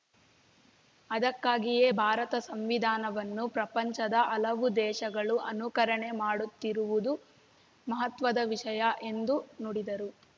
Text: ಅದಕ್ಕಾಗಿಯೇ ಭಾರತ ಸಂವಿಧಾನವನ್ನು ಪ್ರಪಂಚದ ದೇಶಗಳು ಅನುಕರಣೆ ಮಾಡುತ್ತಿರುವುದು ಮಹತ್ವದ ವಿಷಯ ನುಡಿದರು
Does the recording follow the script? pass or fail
fail